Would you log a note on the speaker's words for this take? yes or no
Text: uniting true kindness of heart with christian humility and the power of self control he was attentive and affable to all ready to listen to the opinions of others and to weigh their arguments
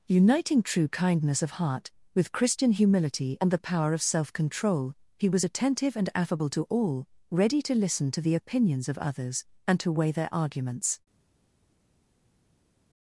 no